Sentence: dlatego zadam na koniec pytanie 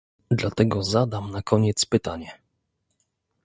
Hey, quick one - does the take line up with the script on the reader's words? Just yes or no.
yes